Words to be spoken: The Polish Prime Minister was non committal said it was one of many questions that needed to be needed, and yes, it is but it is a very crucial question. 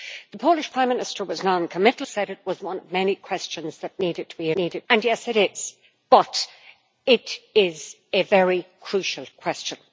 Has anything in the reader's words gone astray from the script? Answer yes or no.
no